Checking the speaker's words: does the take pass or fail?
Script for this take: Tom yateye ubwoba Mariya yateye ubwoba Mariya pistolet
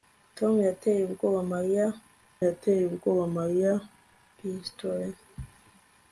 pass